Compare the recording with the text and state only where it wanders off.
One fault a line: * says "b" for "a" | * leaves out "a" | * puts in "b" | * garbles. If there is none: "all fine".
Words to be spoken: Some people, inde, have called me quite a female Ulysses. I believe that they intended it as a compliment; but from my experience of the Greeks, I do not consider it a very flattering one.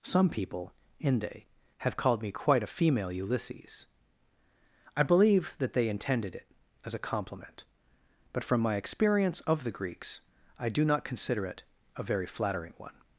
all fine